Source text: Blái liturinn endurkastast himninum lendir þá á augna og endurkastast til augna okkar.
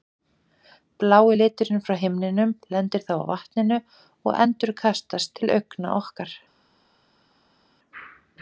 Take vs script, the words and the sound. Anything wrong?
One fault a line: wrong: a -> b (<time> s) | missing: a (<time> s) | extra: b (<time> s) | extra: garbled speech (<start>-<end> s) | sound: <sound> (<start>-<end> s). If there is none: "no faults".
wrong: endurkastast -> frá (1.9 s)
wrong: augna -> vatninu (3.3 s)